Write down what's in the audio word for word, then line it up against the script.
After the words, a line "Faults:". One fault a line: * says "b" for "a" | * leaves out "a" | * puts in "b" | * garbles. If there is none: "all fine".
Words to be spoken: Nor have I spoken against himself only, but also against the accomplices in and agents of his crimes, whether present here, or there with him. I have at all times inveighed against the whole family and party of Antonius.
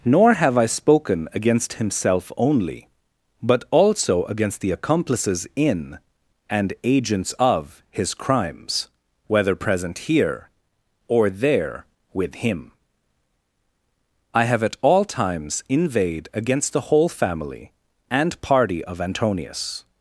Nor have I spoken against himself only, but also against the accomplices in and agents of his crimes, whether present here, or there with him. I have at all times inveighed against the whole family and party of Antonius.
Faults:
all fine